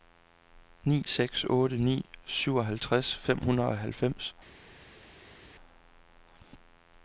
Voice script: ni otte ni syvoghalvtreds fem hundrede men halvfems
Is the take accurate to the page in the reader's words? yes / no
no